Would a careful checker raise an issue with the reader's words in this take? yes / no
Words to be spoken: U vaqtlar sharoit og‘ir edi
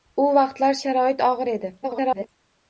yes